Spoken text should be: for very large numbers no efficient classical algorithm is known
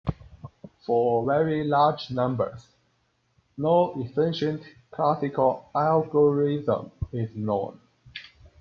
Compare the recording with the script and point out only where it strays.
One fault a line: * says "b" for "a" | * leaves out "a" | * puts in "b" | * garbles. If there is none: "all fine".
all fine